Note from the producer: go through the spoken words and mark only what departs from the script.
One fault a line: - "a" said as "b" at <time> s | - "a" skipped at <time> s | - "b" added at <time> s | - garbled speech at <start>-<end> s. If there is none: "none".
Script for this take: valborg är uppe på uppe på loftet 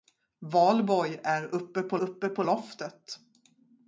none